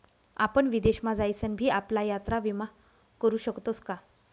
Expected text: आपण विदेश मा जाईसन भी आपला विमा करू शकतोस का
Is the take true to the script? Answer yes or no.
no